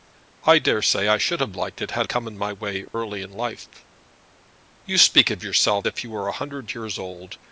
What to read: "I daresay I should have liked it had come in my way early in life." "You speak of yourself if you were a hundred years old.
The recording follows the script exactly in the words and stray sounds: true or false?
false